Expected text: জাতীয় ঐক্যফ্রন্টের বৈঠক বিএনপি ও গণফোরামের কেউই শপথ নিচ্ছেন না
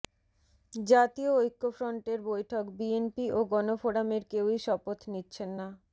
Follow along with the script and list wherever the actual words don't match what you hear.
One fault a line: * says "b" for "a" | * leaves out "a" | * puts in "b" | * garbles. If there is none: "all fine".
all fine